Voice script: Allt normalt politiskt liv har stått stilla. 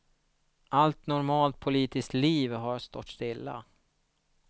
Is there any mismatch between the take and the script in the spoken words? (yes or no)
no